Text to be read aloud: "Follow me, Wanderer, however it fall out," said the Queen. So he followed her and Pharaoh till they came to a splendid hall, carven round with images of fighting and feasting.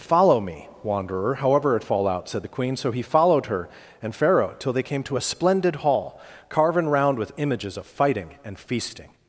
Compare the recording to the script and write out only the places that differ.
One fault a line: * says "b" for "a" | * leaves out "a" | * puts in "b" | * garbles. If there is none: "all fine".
all fine